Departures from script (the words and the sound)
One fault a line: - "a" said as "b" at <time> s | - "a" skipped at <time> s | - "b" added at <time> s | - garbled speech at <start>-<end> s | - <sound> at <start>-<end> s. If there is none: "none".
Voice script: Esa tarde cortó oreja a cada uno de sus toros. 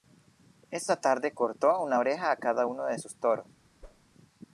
- "una" added at 1.8 s
- whoosh at 3.8-4.1 s